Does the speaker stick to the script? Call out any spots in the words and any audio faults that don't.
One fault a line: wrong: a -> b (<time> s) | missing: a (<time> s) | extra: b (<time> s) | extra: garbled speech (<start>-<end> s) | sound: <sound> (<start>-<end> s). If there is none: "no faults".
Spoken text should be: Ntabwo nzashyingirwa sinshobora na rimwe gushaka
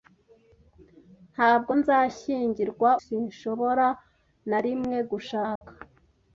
sound: dropout (5.6-5.6 s)